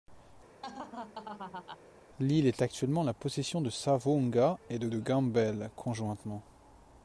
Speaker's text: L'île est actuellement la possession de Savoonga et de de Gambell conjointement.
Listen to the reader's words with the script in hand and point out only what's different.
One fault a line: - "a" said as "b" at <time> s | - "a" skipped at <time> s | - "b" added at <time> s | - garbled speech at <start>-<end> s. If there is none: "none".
none